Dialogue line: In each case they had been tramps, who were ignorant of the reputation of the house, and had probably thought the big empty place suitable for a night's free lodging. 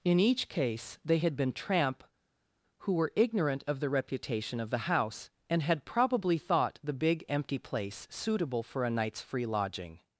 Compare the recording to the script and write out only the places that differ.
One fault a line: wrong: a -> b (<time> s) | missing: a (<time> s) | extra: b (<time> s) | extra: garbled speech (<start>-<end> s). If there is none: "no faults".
wrong: tramps -> tramp (1.5 s)